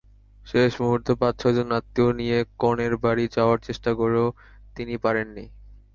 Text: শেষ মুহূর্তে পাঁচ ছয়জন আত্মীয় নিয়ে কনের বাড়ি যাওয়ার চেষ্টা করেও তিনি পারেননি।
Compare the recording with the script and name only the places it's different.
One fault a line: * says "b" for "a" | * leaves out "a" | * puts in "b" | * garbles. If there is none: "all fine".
all fine